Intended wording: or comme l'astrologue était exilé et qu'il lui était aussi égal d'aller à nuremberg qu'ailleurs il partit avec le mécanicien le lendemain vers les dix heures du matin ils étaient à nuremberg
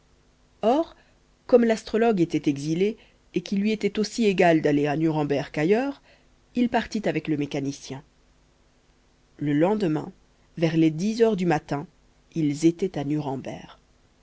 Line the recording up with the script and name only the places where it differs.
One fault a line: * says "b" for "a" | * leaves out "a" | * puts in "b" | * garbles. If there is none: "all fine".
all fine